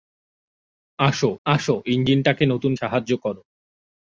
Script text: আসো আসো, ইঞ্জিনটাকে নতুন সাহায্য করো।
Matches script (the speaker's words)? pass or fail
pass